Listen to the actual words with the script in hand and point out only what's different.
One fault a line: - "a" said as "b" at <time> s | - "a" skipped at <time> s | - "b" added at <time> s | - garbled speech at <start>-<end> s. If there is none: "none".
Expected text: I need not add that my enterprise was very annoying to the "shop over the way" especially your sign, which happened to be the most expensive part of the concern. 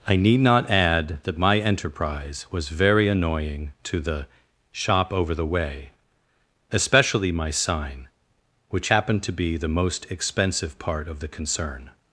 - "your" said as "my" at 7.3 s